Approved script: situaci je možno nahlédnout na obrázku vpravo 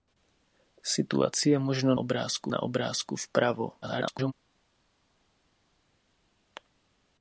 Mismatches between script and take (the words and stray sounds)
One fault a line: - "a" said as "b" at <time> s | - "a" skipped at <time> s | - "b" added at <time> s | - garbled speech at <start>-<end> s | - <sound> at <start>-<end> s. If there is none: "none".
- "nahlédnout" said as "obrázku" at 2.0 s
- garbled speech at 3.8-4.3 s